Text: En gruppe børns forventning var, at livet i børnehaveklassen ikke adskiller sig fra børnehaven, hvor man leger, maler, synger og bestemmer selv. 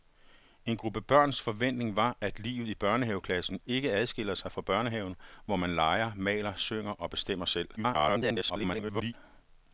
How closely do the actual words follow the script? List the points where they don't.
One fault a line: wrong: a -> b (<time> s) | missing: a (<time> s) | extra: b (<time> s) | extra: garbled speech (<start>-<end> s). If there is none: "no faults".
extra: garbled speech (7.8-9.1 s)